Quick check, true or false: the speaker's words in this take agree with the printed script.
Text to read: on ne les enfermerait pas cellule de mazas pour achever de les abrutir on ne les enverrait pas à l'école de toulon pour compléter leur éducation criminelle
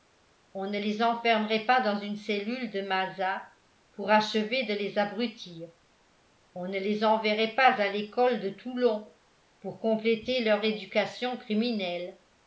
false